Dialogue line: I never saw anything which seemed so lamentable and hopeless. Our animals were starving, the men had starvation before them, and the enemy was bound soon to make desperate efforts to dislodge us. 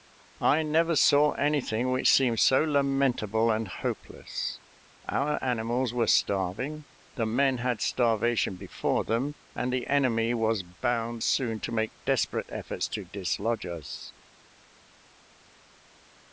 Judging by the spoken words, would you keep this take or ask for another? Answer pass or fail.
pass